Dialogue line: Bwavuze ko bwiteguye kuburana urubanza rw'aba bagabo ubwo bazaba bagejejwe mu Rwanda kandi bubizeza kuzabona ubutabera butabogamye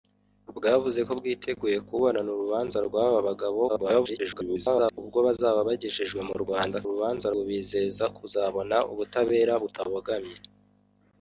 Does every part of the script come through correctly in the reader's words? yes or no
no